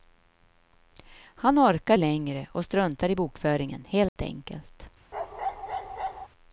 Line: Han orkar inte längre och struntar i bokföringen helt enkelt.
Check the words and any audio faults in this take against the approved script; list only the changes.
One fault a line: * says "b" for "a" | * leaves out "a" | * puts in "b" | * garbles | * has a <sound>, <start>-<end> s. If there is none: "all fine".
* leaves out "inte"
* has a dropout, 4.1-4.2 s
* has a bark, 5.1-6.3 s